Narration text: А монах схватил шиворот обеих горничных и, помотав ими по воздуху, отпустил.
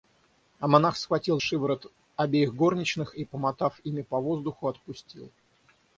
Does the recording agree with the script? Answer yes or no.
yes